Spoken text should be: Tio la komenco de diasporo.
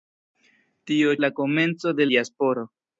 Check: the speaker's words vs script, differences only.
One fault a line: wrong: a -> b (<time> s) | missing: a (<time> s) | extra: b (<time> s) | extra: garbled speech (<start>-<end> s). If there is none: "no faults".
no faults